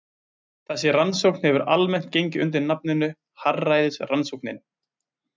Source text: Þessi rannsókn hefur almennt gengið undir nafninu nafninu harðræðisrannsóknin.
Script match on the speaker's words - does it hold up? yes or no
no